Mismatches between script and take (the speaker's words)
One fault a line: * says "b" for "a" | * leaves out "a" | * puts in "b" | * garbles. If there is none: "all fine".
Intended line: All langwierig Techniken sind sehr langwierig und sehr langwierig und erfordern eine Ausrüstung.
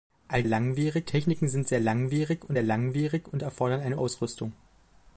all fine